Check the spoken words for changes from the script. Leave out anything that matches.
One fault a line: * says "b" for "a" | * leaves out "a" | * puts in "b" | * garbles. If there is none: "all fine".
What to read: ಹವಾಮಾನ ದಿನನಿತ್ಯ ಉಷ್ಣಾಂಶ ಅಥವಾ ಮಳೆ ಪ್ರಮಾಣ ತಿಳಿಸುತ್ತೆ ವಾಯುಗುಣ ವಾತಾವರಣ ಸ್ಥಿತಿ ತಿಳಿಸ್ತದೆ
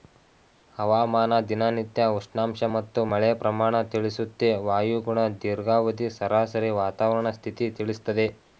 * says "ಮತ್ತು" for "ಅಥವಾ"
* puts in "ದೀರ್ಘಾವಧಿ ಸರಾಸರಿ"